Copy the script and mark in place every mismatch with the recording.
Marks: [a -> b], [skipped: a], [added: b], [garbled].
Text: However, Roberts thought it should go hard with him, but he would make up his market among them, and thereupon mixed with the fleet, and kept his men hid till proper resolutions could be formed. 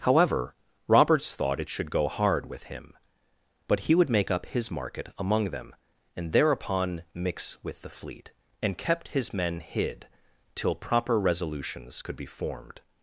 However, Roberts thought it should go hard with him, but he would make up his market among them, and thereupon [mixed -> mix] with the fleet, and kept his men hid till proper resolutions could be formed.